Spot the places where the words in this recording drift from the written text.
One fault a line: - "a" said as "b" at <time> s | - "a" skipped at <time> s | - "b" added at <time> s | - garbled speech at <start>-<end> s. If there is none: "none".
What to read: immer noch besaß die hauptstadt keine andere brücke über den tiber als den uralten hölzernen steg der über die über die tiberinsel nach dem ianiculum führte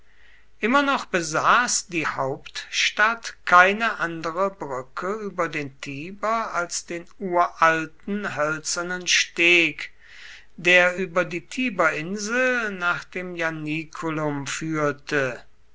- "über die" skipped at 11.5 s